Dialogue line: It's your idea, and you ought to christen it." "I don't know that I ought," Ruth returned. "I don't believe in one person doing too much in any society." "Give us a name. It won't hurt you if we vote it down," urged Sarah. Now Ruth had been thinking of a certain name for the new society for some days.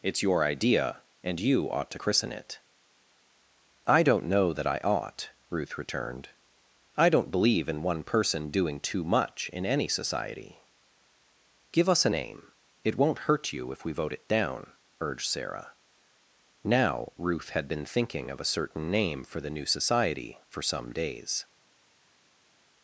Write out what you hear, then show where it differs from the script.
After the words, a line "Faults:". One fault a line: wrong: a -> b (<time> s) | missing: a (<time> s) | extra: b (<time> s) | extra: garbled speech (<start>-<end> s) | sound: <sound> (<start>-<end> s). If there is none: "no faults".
It's your idea, and you ought to christen it." "I don't know that I ought," Ruth returned. "I don't believe in one person doing too much in any society." "Give us a name. It won't hurt you if we vote it down," urged Sarah. Now Ruth had been thinking of a certain name for the new society for some days.
Faults:
no faults